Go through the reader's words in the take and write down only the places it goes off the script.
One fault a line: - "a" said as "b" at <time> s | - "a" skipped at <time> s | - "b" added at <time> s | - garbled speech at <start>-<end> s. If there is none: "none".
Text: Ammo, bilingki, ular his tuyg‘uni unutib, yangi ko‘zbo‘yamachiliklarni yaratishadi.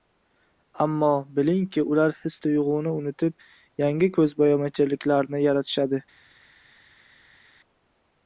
none